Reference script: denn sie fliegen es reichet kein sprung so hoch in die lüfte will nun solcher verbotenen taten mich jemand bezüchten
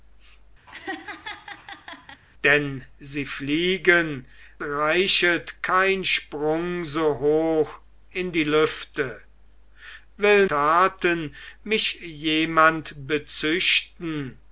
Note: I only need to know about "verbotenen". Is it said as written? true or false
false